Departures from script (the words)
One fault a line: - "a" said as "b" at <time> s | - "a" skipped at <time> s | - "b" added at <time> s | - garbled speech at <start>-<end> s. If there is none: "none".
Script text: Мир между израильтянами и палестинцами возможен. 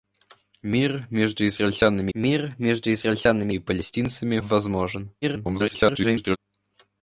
- "мир между израильтянами" added at 2.1 s
- garbled speech at 5.2-6.4 s